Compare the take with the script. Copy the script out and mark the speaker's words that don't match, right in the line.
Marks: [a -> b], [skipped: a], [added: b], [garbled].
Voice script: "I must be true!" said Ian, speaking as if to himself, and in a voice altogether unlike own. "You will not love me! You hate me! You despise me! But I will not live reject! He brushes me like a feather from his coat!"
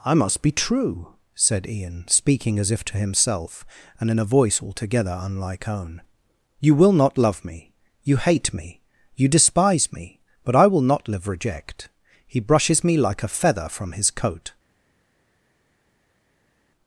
"I must be true!" said Ian, speaking as if to himself, and in a voice altogether unlike own. "You will not love me! You hate me! You despise me! But I will not live reject! He brushes me like a feather from his coat!"